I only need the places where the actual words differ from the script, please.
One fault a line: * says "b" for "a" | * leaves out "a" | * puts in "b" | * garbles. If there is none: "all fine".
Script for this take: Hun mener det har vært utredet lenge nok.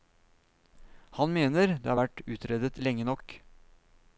* says "Han" for "Hun"